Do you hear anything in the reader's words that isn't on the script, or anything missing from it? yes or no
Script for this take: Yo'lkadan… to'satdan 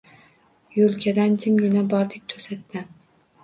yes